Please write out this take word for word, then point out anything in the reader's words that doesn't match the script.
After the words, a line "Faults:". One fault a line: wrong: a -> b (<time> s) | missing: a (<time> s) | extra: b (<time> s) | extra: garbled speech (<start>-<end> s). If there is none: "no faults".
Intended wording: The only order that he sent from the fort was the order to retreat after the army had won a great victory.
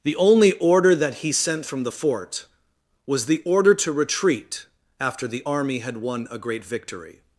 The only order that he sent from the fort was the order to retreat after the army had won a great victory.
Faults:
no faults